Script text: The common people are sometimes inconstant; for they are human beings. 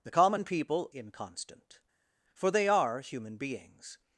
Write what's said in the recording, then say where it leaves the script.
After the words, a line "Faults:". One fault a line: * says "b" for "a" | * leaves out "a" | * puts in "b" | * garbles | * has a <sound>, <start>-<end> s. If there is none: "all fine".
The common people inconstant; for they are human beings.
Faults:
* leaves out "are sometimes"